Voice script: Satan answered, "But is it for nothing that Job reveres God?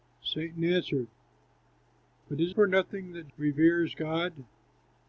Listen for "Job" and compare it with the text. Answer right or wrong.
wrong